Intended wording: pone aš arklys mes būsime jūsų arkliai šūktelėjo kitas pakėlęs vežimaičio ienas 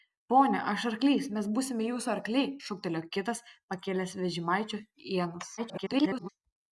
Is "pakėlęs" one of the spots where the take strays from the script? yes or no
no